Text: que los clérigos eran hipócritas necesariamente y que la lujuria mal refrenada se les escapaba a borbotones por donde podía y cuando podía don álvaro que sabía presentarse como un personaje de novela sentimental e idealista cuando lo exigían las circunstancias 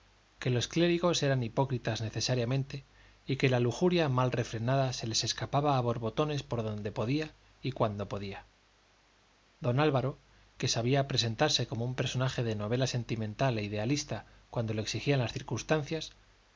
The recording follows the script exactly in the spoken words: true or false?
true